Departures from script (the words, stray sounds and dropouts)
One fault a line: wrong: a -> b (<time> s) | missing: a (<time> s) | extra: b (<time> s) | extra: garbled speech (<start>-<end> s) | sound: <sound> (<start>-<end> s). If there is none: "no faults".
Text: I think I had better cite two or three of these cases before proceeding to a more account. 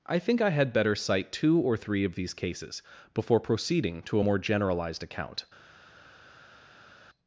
extra: generalized (4.4 s)